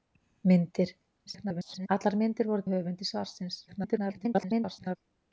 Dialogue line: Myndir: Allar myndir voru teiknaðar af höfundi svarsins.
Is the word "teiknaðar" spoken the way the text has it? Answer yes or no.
no